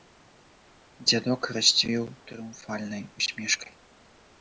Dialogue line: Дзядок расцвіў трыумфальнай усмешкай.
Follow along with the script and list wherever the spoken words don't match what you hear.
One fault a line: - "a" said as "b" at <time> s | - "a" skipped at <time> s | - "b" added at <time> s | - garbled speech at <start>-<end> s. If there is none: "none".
none